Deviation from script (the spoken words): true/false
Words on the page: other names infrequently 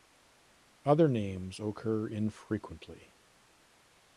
true